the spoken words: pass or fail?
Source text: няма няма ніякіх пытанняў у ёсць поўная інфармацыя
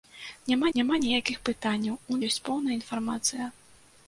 pass